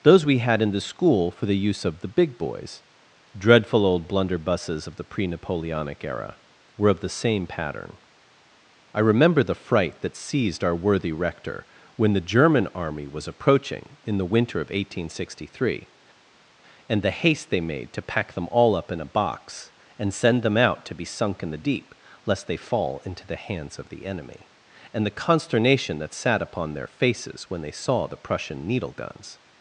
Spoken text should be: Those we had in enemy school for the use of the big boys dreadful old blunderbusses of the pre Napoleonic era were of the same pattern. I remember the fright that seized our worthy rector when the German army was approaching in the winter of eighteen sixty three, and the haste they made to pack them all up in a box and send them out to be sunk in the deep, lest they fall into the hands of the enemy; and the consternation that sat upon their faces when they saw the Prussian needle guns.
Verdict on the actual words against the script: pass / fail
fail